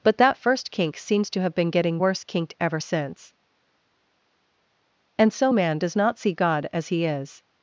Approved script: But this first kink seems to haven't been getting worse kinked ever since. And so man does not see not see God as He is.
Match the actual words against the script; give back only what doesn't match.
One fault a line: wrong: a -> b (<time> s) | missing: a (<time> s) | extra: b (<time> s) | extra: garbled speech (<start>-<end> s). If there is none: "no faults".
wrong: this -> that (0.2 s)
wrong: haven't -> have (1.4 s)
missing: not see (6.3 s)